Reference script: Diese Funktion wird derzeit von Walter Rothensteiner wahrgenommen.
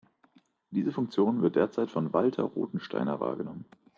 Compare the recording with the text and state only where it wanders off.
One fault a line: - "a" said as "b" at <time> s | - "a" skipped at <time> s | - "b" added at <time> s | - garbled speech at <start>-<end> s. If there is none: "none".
none